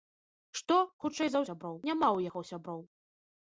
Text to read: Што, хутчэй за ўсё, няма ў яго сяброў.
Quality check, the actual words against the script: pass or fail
fail